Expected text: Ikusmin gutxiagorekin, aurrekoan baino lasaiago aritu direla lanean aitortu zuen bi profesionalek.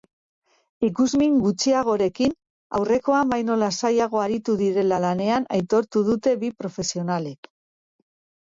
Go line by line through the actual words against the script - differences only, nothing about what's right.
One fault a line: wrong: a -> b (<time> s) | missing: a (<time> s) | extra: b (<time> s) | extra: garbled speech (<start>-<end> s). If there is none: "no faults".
wrong: zuen -> dute (6.1 s)